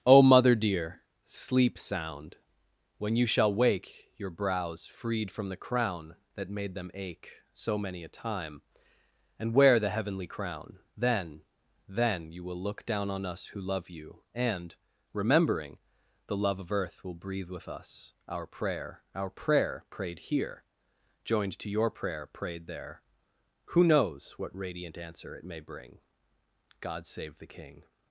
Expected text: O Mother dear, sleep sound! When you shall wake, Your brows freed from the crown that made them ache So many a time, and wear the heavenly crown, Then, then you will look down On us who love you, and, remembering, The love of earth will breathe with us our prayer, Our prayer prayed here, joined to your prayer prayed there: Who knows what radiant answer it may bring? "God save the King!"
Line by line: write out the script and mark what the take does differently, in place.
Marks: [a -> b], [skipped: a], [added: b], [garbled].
O Mother dear, sleep sound! When you shall wake, Your brows freed from the crown that made them ache So many a time, and wear the heavenly crown, Then, then you will look down On us who love you, and, remembering, The love of earth will breathe with us our prayer, Our prayer prayed here, joined to your prayer prayed there: Who knows what radiant answer it may bring? "God save the King!"